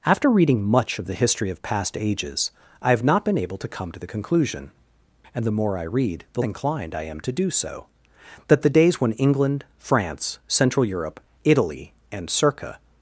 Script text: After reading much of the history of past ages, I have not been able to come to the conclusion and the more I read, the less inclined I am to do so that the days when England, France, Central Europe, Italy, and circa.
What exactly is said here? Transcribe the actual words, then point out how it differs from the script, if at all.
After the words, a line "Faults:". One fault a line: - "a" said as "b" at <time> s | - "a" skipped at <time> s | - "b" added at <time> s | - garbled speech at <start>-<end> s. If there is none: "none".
After reading much of the history of past ages, I have not been able to come to the conclusion and the more I read, the inclined I am to do so that the days when England, France, Central Europe, Italy, and circa.
Faults:
- "less" skipped at 6.4 s